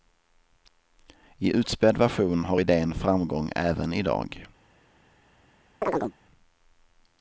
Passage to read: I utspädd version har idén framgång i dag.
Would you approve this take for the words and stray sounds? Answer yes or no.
no